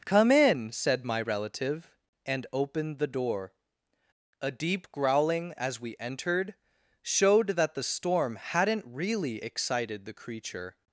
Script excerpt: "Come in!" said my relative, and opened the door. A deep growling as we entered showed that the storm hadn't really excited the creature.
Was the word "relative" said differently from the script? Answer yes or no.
no